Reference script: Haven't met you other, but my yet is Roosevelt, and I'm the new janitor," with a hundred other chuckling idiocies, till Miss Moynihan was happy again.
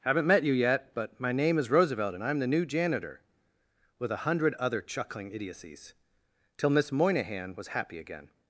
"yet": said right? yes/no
no